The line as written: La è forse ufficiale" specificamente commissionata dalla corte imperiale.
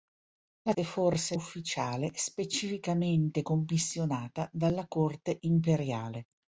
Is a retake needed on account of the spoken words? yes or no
no